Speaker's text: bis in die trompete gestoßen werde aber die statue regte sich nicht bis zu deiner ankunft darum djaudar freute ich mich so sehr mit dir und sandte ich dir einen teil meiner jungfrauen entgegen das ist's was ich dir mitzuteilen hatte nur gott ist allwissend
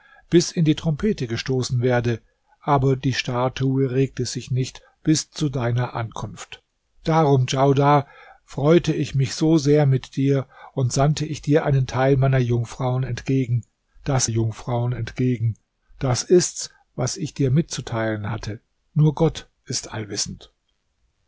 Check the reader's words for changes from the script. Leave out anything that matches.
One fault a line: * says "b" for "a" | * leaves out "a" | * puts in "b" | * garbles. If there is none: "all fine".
* puts in "jungfrauen entgegen das"